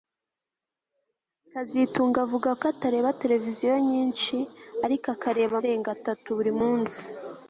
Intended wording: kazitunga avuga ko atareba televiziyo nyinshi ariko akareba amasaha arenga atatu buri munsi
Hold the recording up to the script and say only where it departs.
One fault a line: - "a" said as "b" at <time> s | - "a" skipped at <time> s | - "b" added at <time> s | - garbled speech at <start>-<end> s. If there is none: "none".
- "amasaha" skipped at 5.5 s